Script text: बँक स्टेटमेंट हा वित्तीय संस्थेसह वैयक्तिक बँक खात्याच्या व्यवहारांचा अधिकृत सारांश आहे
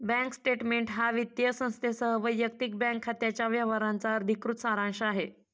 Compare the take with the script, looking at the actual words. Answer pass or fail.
pass